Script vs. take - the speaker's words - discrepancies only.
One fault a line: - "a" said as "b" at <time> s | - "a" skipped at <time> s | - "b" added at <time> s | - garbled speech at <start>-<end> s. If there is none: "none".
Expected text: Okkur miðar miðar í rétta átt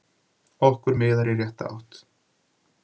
- "miðar" skipped at 1.3 s